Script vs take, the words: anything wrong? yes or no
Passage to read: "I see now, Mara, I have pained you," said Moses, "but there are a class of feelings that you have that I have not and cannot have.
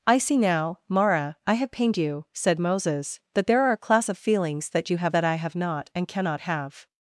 yes